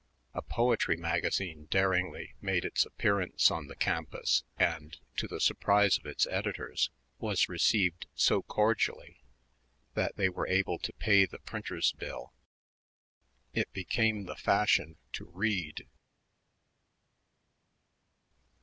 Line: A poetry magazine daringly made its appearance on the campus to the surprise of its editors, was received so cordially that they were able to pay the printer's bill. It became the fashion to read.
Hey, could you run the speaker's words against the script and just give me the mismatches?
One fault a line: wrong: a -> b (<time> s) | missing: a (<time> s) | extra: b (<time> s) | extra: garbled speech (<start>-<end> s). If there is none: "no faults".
extra: and (4.6 s)